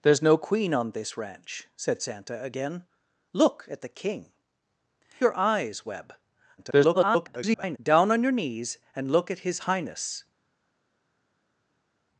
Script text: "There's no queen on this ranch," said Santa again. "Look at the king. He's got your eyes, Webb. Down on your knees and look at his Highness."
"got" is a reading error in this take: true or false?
true